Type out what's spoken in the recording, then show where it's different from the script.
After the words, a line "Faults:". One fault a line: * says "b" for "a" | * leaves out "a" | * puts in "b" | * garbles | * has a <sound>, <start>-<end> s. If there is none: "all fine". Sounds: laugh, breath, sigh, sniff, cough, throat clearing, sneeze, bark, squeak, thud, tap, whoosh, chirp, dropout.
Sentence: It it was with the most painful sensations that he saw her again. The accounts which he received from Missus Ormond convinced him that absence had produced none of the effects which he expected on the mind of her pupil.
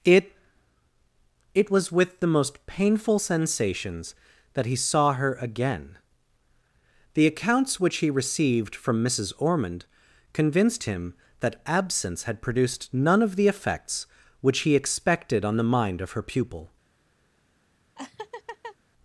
It it was with the most painful sensations that he saw her again. The accounts which he received from Missus Ormond convinced him that absence had produced none of the effects which he expected on the mind of her pupil.
Faults:
* has a laugh, 18.0-18.8 s